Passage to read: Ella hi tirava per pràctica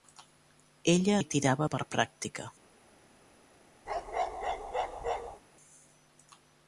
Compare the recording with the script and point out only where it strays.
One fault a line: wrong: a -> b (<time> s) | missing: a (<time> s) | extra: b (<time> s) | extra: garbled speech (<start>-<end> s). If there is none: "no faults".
no faults